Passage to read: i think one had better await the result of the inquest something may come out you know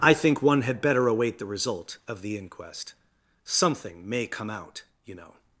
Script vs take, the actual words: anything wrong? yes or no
no